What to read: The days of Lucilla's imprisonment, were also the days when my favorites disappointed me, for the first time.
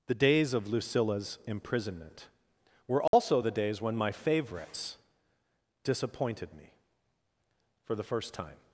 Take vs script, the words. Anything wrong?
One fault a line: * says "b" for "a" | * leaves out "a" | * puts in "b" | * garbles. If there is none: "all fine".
all fine